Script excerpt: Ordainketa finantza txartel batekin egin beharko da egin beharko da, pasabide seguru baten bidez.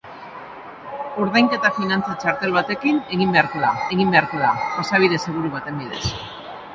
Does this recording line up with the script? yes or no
yes